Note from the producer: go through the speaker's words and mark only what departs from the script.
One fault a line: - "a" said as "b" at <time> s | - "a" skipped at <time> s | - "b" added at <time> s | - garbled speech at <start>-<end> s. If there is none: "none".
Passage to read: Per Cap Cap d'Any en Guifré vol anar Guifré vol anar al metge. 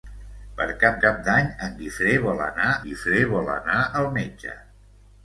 none